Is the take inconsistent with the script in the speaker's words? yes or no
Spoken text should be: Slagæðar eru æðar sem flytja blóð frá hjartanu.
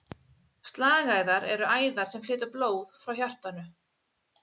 no